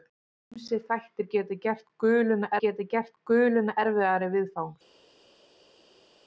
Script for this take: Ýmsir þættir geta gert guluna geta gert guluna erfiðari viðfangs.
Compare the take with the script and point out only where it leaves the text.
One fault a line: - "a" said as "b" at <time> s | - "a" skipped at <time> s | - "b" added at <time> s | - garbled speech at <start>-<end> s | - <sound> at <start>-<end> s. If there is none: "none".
none